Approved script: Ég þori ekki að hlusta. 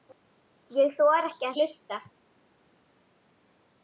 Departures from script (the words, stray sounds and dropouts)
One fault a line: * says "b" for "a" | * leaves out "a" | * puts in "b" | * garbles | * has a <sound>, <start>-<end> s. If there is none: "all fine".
all fine